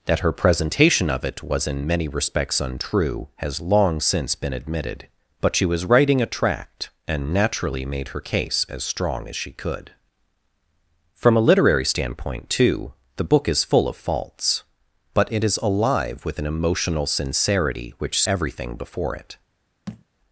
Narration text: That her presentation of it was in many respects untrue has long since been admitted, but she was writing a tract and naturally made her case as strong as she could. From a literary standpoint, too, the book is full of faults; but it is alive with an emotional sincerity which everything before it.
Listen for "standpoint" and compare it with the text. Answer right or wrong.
right